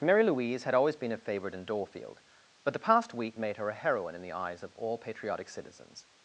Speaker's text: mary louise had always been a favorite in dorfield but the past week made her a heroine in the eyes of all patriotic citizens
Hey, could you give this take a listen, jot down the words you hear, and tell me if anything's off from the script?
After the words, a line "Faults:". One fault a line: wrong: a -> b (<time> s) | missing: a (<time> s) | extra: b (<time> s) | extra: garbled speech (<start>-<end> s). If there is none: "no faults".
mary louise had always been a favorite in dorfield but the past week made her a heroine in the eyes of all patriotic citizens
Faults:
no faults